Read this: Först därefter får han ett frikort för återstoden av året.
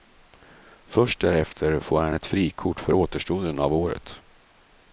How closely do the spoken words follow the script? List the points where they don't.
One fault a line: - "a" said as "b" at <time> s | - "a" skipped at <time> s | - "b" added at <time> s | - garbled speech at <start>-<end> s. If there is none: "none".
none